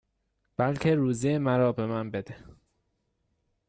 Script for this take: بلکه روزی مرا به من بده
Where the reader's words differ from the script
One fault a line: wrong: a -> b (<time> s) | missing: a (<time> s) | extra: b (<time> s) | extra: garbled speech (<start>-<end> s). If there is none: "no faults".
no faults